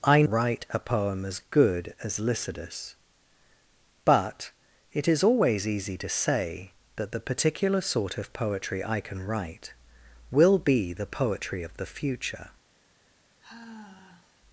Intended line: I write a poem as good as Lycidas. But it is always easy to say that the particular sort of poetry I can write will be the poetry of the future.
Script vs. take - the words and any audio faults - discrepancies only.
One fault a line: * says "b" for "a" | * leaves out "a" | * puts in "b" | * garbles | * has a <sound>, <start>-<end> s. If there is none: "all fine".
* has a sigh, 13.4-14.4 s